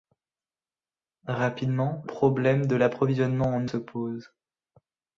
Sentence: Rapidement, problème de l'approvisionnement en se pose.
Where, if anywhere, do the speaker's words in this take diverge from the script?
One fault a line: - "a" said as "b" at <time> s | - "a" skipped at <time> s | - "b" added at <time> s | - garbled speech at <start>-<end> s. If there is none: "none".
none